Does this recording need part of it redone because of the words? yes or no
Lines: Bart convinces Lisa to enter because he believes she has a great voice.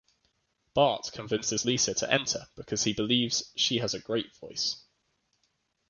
no